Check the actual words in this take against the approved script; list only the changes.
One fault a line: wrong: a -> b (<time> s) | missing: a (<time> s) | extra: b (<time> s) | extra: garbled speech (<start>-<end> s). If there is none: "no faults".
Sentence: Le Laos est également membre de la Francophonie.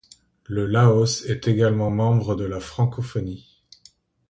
no faults